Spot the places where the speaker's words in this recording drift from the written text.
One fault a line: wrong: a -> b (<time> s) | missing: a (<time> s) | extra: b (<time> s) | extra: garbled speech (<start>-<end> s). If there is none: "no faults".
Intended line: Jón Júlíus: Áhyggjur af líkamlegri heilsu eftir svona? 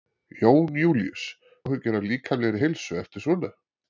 no faults